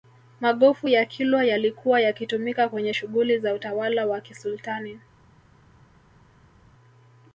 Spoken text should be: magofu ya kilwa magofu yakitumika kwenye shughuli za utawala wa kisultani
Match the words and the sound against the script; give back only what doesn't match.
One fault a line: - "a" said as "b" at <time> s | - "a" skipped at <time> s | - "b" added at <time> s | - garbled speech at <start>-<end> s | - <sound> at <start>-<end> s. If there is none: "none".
- "magofu" said as "yalikuwa" at 1.4 s